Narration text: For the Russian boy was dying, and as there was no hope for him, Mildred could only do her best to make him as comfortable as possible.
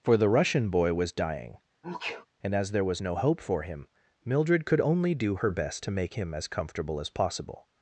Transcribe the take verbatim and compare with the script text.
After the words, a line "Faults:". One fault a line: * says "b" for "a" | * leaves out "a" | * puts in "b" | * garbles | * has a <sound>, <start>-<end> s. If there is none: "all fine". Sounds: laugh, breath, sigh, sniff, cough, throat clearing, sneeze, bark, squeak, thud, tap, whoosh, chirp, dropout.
For the Russian boy was dying, and as there was no hope for him, Mildred could only do her best to make him as comfortable as possible.
Faults:
* has a sneeze, 1.8-2.3 s